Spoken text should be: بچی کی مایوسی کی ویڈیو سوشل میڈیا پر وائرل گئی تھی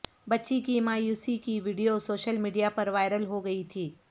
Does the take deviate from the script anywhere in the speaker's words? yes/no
yes